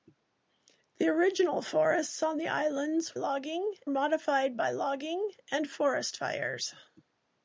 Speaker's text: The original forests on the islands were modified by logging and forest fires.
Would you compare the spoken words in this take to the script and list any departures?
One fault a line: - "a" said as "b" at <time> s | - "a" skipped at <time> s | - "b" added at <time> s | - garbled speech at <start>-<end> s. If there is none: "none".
- "were" said as "logging" at 3.1 s